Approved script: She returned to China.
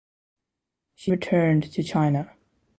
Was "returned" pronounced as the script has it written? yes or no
yes